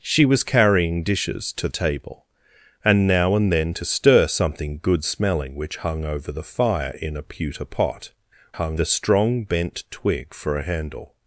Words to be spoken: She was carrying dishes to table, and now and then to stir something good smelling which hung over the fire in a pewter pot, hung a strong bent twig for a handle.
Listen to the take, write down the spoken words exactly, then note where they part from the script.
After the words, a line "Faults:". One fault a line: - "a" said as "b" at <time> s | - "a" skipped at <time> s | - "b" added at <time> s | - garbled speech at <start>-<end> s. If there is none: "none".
She was carrying dishes to table, and now and then to stir something good smelling which hung over the fire in a pewter pot, hung a strong bent twig for a handle.
Faults:
none